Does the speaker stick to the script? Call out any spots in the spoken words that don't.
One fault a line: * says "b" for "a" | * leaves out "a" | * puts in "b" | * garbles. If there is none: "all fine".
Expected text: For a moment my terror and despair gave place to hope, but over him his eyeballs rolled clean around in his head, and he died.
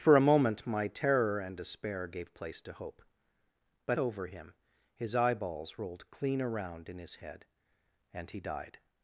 all fine